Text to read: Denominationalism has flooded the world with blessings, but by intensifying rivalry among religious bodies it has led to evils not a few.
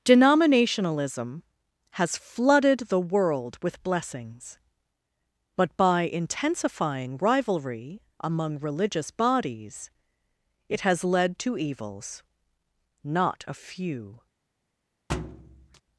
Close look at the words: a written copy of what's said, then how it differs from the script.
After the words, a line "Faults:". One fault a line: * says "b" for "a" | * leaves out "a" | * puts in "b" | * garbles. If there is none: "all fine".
Denominationalism has flooded the world with blessings, but by intensifying rivalry among religious bodies it has led to evils not a few.
Faults:
all fine